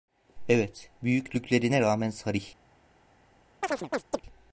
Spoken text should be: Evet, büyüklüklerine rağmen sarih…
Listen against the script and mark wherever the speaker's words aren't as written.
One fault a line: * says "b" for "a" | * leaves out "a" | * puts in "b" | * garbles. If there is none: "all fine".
all fine